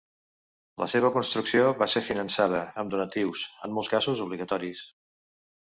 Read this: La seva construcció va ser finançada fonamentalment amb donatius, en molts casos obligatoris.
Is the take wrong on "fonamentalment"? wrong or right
wrong